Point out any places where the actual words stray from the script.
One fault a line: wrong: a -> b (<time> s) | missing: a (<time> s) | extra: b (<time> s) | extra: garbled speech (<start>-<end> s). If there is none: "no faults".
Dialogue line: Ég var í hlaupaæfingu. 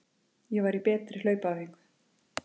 extra: betri (0.9 s)